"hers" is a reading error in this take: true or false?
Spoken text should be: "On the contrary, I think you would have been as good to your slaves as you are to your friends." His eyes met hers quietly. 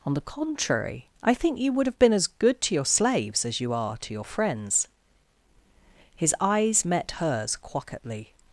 false